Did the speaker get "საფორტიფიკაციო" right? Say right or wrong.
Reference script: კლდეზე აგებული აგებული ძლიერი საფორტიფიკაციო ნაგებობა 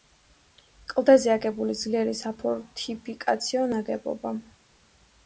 right